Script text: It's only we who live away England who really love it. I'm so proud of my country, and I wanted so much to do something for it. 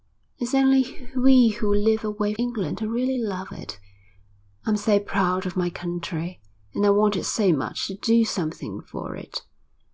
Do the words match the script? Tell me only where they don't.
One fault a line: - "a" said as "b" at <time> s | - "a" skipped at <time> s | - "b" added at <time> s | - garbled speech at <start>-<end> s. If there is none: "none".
none